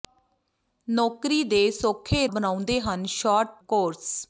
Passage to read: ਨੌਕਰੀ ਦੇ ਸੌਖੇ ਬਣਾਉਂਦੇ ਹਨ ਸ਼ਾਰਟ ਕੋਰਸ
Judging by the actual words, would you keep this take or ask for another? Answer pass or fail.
pass